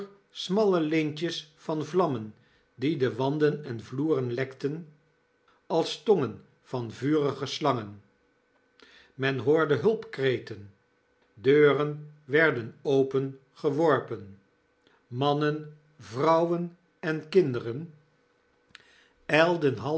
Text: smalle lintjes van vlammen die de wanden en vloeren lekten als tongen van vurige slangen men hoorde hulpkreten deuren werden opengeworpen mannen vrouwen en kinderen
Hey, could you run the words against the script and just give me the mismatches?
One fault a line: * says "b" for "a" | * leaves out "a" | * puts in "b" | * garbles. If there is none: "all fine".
all fine